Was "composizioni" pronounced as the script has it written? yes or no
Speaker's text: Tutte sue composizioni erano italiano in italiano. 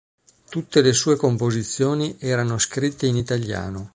yes